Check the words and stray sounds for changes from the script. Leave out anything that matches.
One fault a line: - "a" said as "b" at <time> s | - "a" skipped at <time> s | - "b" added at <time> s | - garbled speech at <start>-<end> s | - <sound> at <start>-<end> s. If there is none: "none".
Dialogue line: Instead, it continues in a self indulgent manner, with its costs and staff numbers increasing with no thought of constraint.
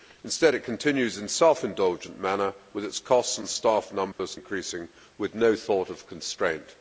- dropout at 4.1-4.2 s